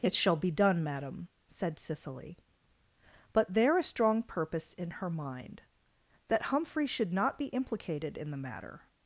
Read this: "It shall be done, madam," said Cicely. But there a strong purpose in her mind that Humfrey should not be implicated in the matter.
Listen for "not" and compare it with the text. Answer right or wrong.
right